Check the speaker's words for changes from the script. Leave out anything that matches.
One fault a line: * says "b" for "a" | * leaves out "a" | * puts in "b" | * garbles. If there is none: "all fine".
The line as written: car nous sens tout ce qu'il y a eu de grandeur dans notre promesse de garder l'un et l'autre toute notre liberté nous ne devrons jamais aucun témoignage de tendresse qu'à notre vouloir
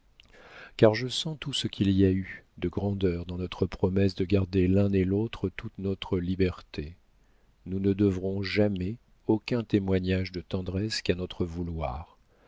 * says "je" for "nous"